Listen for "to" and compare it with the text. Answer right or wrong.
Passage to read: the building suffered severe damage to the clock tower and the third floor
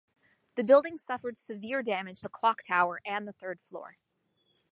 wrong